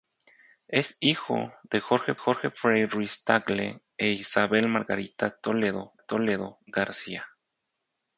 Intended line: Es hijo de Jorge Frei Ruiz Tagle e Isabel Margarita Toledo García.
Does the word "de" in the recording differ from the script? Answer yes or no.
no